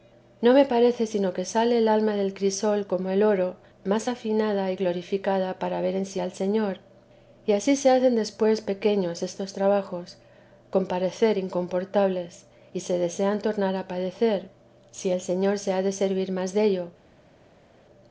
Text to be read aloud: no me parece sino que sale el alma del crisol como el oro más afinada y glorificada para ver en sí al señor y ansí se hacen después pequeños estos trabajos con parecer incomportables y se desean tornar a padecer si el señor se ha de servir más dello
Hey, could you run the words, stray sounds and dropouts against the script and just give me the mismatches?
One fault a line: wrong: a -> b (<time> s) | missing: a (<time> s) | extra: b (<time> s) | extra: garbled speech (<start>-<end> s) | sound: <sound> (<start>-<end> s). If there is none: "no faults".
no faults